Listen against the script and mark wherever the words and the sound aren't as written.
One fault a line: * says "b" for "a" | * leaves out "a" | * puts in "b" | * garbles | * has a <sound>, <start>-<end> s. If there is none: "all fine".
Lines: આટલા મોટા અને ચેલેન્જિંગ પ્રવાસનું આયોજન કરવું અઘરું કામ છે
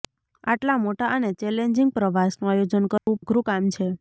* has a dropout, 3.0-3.1 s